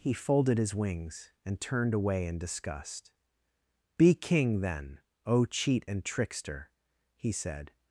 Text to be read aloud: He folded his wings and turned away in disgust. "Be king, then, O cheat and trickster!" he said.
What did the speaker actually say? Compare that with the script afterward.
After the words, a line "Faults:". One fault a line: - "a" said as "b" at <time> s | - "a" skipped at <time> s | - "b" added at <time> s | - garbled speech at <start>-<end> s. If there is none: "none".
He folded his wings and turned away in disgust. "Be king, then, O cheat and trickster!" he said.
Faults:
none